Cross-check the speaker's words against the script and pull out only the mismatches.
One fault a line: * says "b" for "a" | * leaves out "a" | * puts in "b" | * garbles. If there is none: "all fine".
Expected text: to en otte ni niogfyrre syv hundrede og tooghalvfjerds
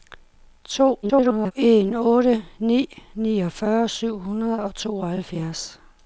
* garbles